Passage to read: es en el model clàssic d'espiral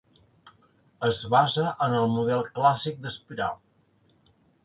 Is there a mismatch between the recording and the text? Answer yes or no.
yes